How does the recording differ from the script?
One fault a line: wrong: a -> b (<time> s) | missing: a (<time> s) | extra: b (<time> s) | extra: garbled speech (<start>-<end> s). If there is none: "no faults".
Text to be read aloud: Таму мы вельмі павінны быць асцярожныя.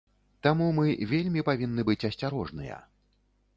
no faults